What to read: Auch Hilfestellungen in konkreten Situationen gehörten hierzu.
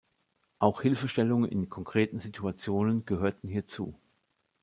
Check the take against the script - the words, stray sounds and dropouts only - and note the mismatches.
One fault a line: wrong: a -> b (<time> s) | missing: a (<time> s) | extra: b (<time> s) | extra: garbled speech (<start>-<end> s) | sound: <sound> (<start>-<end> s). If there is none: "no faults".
no faults